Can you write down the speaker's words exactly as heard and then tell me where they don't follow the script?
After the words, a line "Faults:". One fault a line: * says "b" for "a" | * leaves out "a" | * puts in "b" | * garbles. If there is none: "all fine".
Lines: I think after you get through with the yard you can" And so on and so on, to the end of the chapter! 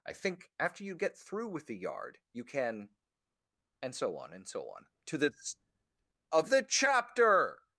I think after you get through with the yard you can" And so on and so on, to the of the chapter!
Faults:
* leaves out "end"